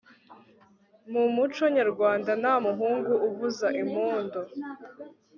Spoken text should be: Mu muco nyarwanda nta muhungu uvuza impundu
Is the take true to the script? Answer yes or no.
yes